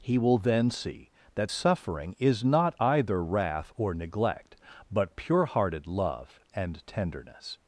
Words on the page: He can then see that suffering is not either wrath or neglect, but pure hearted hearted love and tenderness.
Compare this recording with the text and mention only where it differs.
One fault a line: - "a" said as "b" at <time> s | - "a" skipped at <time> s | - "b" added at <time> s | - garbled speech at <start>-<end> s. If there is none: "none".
- "can" said as "will" at 0.2 s
- "hearted" skipped at 5.9 s